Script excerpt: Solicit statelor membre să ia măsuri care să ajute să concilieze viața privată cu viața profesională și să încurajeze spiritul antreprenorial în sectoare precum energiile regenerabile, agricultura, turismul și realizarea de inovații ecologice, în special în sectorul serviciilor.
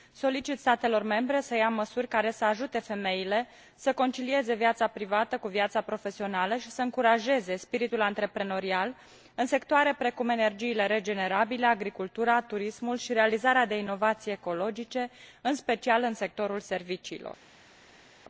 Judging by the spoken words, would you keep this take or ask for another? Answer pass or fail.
fail